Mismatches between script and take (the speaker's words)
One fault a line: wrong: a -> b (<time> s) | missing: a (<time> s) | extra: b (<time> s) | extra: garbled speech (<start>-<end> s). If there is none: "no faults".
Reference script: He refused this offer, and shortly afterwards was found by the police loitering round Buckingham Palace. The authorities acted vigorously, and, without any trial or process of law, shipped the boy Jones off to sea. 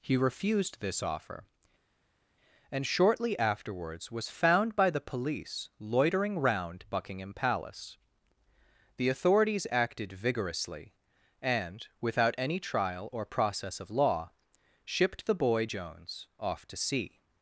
no faults